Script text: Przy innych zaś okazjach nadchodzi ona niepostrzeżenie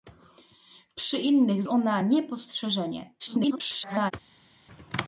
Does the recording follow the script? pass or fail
fail